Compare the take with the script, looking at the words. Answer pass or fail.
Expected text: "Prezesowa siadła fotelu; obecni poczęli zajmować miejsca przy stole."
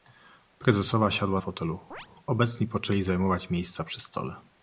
pass